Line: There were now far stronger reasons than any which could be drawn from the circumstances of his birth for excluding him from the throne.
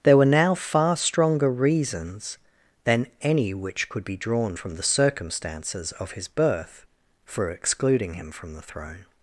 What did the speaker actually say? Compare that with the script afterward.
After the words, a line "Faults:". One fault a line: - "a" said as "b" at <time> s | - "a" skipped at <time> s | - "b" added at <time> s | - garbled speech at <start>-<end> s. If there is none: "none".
There were now far stronger reasons than any which could be drawn from the circumstances of his birth for excluding him from the throne.
Faults:
none